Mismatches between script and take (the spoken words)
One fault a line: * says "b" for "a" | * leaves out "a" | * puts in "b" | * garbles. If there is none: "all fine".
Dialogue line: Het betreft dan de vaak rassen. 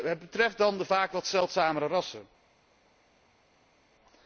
* puts in "wat zeldzamere"